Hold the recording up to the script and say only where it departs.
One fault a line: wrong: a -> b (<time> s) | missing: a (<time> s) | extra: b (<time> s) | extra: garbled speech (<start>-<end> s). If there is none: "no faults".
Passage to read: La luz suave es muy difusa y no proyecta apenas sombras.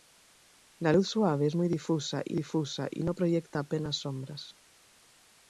extra: difusa y (2.3 s)